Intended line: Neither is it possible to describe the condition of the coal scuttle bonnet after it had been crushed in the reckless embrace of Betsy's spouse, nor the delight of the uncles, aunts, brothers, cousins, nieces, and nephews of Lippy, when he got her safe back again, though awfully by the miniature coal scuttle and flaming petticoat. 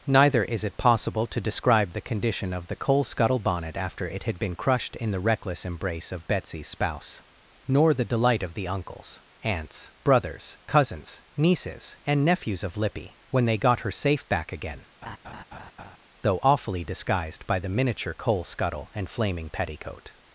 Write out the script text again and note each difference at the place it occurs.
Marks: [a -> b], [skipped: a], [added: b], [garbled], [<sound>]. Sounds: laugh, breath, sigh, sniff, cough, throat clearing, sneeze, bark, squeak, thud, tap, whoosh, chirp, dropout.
Neither is it possible to describe the condition of the coal scuttle bonnet after it had been crushed in the reckless embrace of Betsy's spouse, nor the delight of the uncles, aunts, brothers, cousins, nieces, and nephews of Lippy, when [he -> they] got her safe back again, [laugh] though awfully [added: disguised] by the miniature coal scuttle and flaming petticoat.